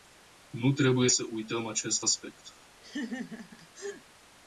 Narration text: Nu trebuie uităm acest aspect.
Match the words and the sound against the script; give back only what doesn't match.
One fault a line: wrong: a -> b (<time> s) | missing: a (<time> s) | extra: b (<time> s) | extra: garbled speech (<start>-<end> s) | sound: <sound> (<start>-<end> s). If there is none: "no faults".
extra: să (1.1 s)
sound: laugh (2.8-4.0 s)